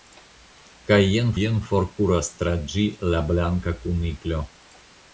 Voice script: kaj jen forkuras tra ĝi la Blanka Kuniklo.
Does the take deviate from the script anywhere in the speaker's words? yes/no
yes